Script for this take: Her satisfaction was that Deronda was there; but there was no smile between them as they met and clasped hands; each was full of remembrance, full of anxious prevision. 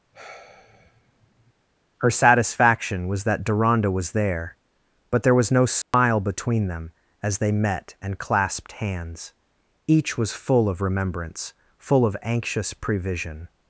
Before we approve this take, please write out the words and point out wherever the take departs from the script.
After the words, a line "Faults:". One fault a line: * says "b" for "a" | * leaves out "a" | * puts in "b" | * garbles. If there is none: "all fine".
Her satisfaction was that Deronda was there; but there was no smile between them as they met and clasped hands; each was full of remembrance, full of anxious prevision.
Faults:
all fine